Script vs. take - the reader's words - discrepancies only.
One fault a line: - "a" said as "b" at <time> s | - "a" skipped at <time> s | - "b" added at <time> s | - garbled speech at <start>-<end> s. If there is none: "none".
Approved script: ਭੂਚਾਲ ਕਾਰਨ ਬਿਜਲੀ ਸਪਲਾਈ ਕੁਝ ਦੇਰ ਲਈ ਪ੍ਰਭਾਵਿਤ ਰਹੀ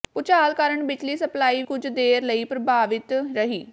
none